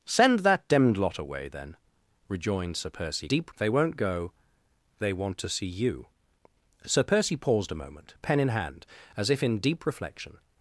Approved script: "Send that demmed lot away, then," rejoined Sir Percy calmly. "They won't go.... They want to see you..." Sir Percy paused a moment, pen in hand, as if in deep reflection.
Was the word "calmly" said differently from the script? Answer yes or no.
yes